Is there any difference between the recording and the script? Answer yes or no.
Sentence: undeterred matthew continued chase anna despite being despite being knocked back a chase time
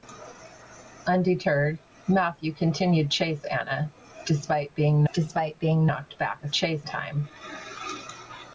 no